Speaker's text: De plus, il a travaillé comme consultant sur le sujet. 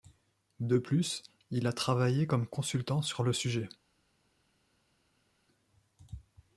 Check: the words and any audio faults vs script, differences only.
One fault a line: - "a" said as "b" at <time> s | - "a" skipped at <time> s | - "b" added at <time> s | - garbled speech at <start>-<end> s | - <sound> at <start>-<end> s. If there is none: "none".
none